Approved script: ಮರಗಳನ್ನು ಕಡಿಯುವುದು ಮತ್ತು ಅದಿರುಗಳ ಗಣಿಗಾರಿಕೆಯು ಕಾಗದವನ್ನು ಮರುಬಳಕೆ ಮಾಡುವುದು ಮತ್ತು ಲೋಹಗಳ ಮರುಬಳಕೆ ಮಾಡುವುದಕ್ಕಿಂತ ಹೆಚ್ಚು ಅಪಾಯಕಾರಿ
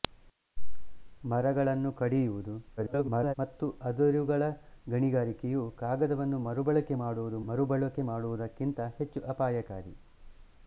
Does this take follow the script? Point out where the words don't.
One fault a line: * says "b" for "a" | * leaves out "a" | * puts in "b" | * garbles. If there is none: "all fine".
* garbles
* leaves out "ಮತ್ತು ಲೋಹಗಳ"